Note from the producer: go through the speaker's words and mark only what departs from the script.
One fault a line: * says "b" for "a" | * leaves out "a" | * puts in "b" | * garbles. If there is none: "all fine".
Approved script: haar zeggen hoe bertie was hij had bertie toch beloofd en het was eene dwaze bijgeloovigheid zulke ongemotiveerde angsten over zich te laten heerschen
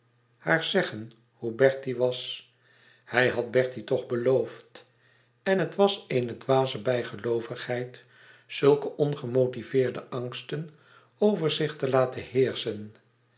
all fine